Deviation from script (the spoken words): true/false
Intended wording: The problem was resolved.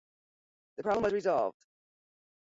false